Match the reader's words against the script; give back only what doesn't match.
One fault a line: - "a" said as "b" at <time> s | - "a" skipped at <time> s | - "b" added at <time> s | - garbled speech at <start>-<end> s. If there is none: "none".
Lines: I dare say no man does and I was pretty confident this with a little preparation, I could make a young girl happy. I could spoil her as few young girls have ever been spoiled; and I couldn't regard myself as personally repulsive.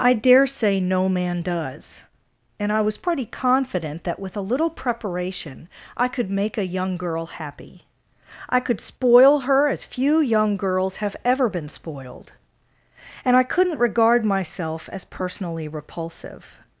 - "this" said as "that" at 4.0 s